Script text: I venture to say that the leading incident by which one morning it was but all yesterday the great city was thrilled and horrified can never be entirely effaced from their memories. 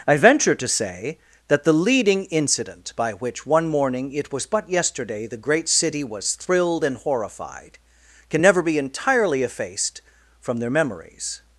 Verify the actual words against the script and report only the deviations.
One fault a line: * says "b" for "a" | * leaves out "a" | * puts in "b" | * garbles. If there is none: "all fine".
* leaves out "all"